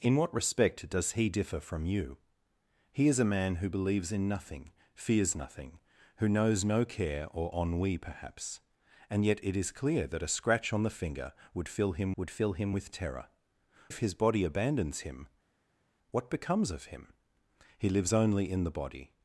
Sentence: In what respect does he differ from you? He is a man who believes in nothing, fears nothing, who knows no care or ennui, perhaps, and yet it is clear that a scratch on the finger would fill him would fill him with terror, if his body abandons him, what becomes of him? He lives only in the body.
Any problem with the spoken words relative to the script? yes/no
no